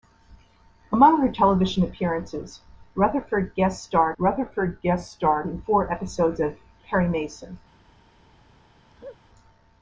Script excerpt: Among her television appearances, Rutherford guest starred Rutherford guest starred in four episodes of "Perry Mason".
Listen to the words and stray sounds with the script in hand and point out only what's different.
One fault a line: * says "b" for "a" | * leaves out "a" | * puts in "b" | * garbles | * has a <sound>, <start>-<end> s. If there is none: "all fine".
* has a laugh, 8.9-9.2 s